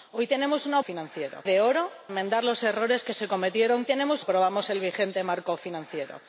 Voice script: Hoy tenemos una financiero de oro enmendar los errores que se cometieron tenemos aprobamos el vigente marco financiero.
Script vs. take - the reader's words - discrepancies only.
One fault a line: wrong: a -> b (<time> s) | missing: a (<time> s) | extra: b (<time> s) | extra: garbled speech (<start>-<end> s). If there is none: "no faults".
no faults